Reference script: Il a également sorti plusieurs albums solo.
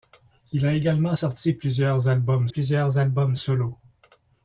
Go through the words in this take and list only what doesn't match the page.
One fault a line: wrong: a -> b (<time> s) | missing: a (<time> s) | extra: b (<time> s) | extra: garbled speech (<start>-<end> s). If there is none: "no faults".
extra: plusieurs albums (2.5 s)